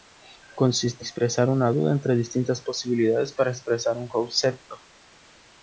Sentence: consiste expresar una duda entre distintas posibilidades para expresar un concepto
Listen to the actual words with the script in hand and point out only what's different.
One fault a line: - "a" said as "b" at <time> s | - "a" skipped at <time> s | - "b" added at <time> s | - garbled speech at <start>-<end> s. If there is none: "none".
none